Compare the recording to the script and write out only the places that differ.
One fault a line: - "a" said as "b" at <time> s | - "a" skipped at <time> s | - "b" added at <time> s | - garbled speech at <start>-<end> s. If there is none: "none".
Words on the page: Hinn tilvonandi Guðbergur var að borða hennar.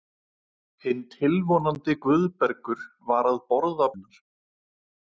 none